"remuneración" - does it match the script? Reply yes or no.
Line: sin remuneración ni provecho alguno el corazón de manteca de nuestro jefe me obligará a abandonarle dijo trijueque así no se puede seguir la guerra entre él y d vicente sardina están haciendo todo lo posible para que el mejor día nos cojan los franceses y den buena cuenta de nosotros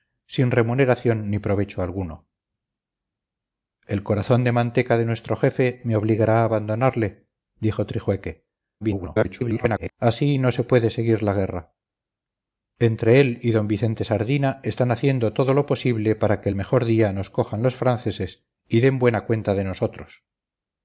yes